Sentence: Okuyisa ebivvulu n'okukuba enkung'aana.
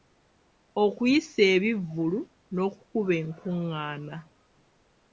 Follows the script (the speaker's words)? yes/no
yes